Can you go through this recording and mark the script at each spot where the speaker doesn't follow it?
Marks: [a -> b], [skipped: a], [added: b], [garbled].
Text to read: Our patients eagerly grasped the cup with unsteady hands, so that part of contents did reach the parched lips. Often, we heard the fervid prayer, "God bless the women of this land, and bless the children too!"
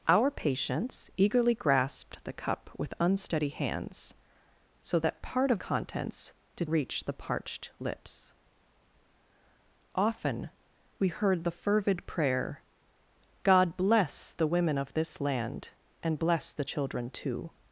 Our patients eagerly grasped the cup with unsteady hands, so that part of contents did reach the parched lips. Often, we heard the fervid prayer, "God bless the women of this land, and bless the children too!"